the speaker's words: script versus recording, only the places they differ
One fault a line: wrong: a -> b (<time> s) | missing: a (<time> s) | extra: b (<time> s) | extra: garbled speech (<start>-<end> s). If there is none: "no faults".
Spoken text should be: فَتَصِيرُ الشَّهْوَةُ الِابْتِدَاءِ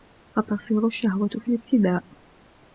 extra: فِي (1.3 s)